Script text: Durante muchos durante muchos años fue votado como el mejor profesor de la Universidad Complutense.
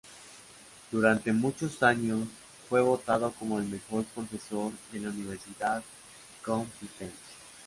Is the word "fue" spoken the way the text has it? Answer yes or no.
yes